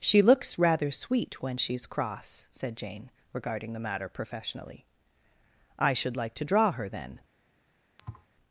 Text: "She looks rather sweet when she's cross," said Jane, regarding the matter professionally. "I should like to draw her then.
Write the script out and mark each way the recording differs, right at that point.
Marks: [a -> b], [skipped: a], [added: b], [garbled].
"She looks rather sweet when she's cross," said Jane, regarding the matter professionally. "I should like to draw her then.